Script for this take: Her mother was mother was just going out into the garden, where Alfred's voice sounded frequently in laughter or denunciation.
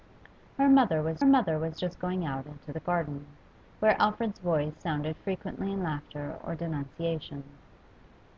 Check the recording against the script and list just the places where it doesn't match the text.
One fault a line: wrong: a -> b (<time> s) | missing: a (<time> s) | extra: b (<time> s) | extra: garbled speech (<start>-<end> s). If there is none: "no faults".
no faults